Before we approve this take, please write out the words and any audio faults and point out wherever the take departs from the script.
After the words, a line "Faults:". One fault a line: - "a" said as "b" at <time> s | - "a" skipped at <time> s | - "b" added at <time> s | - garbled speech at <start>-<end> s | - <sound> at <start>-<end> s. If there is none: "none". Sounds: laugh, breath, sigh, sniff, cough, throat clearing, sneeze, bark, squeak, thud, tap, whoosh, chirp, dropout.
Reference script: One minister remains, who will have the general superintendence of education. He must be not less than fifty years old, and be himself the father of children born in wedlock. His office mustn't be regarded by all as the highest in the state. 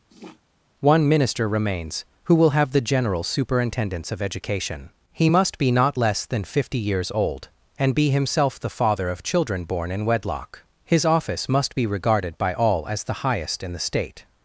One minister remains, who will have the general superintendence of education. He must be not less than fifty years old, and be himself the father of children born in wedlock. His office must be regarded by all as the highest in the state.
Faults:
- sniff at 0.1-0.4 s
- "mustn't" said as "must" at 11.5 s